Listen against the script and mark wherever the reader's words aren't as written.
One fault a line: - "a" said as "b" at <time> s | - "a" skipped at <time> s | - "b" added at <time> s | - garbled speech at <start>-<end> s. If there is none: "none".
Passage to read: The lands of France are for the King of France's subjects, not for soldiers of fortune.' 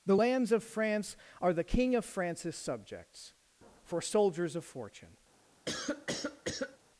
- "for" skipped at 1.5 s
- "not" skipped at 3.3 s